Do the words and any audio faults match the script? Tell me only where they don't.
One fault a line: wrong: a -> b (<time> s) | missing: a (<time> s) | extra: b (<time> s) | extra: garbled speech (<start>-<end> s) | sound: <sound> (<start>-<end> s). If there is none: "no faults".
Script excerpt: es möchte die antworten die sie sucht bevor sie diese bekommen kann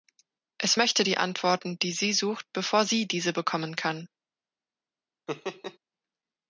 sound: laugh (5.3-5.8 s)